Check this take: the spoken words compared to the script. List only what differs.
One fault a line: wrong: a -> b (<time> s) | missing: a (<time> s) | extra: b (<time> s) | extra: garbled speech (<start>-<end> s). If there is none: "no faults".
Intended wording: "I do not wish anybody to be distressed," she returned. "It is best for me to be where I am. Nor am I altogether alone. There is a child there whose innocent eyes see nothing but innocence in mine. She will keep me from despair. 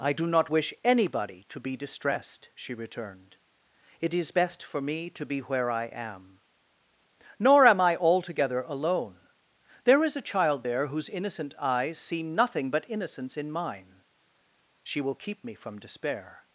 no faults